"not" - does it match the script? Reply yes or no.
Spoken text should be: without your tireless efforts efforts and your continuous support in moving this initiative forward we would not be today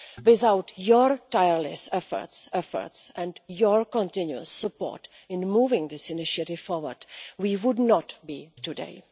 yes